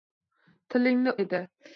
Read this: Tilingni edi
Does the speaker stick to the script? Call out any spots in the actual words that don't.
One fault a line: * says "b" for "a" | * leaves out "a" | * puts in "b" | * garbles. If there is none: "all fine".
all fine